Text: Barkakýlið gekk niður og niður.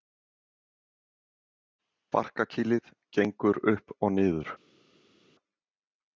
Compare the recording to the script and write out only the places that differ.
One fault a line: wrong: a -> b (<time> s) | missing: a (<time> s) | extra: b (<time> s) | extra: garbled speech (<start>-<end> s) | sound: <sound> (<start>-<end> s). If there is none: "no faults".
wrong: niður -> upp (3.7 s)